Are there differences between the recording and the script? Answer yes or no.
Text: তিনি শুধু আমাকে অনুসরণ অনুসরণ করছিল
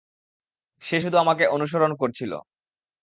yes